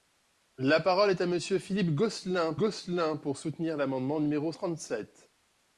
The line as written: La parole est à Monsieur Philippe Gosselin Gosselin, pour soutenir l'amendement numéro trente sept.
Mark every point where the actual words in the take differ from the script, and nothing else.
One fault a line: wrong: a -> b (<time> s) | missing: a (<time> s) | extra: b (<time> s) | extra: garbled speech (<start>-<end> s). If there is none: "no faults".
no faults